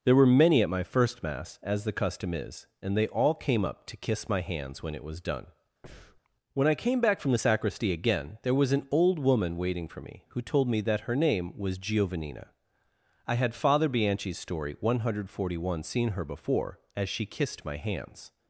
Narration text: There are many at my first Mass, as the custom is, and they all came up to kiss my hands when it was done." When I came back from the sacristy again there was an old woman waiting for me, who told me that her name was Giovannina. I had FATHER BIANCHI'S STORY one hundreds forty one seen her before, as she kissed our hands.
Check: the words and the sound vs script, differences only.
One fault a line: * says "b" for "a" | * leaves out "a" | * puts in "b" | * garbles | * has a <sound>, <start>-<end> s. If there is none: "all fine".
* says "were" for "are"
* has a breath, 5.8-6.2 s
* says "hundred" for "hundreds"
* says "my" for "our"